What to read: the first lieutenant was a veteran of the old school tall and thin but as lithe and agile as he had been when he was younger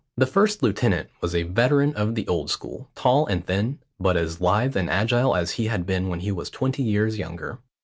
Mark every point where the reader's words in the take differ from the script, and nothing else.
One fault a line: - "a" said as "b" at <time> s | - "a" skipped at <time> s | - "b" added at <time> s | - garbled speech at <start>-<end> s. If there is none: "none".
- "twenty years" added at 6.5 s